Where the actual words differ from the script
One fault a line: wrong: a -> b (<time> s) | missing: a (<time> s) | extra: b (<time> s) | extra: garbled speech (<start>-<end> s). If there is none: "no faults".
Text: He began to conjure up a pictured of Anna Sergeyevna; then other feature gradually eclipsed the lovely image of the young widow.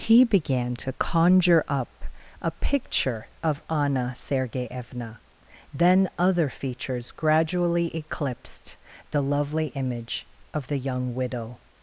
wrong: pictured -> picture (2.5 s)
wrong: feature -> features (6.5 s)